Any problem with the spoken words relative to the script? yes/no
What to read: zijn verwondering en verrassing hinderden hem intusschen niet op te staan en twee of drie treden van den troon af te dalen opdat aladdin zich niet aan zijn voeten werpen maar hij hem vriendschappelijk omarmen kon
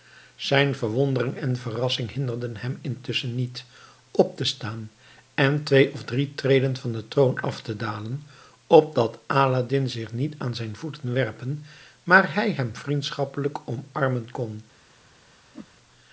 no